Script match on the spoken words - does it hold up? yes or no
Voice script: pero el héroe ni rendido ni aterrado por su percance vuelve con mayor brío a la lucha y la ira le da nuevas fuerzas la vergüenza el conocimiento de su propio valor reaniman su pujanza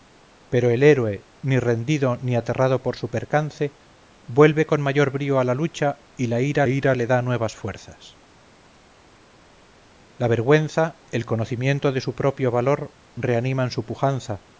no